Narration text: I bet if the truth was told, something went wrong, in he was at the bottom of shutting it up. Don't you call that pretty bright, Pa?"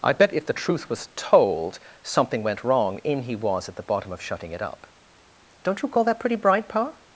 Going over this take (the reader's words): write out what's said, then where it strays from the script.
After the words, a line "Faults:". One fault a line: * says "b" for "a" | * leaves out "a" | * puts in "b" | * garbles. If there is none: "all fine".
I bet if the truth was told, something went wrong, in he was at the bottom of shutting it up. Don't you call that pretty bright, Pa?"
Faults:
all fine